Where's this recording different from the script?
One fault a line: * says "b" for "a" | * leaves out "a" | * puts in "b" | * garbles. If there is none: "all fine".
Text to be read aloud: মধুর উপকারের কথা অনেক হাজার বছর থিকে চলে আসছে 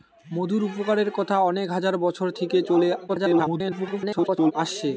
* garbles